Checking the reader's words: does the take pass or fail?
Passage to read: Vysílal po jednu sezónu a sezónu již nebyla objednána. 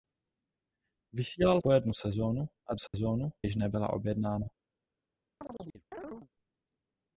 pass